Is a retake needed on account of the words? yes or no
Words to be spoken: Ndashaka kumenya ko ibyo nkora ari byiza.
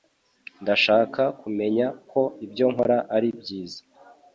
no